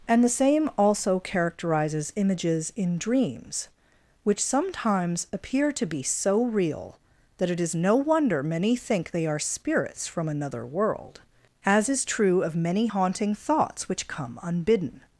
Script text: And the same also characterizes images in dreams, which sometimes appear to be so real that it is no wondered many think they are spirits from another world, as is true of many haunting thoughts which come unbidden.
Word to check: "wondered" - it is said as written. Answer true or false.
false